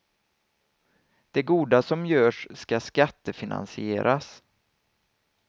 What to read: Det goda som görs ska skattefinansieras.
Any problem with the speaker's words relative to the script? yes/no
no